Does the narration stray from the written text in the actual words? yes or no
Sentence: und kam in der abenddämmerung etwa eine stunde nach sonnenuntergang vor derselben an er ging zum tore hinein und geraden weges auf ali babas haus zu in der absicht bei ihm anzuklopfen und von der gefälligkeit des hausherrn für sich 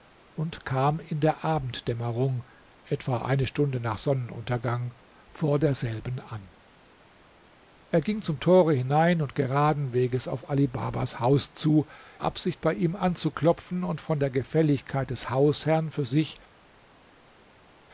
yes